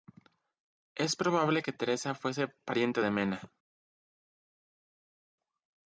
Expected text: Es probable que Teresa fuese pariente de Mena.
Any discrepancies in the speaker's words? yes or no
no